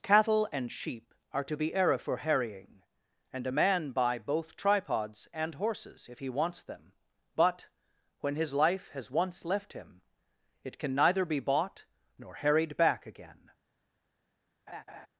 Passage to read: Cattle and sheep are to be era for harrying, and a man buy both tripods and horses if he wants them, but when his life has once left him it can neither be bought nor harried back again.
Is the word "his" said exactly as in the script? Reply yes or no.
yes